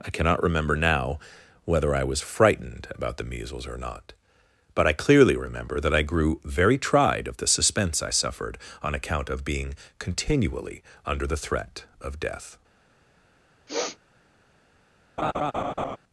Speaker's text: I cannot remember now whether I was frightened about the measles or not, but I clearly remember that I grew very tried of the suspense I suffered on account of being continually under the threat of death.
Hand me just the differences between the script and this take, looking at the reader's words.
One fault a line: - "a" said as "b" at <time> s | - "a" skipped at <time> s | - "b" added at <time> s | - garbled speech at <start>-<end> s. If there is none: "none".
none